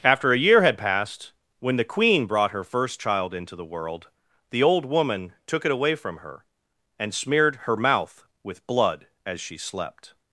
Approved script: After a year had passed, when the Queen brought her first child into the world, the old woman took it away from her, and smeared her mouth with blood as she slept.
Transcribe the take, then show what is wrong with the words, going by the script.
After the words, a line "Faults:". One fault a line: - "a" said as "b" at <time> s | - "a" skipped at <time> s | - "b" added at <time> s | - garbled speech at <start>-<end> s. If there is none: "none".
After a year had passed, when the Queen brought her first child into the world, the old woman took it away from her, and smeared her mouth with blood as she slept.
Faults:
none